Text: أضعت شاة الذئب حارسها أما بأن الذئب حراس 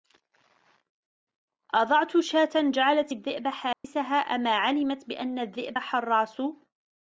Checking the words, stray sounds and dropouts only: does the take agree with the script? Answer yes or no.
no